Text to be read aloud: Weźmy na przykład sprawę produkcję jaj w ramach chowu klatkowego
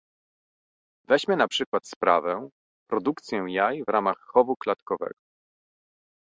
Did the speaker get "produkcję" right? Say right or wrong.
right